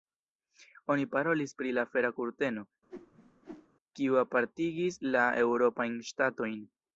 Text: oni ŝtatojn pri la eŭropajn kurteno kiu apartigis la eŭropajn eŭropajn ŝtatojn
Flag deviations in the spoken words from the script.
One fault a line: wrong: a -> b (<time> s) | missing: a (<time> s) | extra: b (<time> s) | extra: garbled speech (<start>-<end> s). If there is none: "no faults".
wrong: ŝtatojn -> parolis (1.1 s)
wrong: eŭropajn -> fera (1.9 s)
missing: eŭropajn (6.0 s)